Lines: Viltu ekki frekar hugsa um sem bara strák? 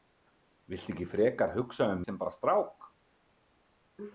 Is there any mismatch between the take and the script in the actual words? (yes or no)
no